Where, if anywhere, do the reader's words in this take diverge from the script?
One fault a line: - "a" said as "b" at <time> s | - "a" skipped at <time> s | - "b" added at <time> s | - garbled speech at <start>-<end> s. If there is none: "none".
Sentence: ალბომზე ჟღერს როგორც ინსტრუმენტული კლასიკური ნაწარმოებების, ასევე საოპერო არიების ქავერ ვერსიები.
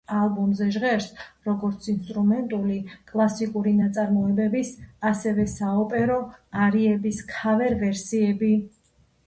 none